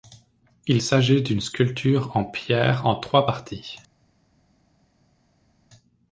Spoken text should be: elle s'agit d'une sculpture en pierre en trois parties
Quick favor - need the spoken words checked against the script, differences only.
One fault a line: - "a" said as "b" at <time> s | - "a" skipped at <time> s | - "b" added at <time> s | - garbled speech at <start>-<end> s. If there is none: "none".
- "elle" said as "il" at 0.7 s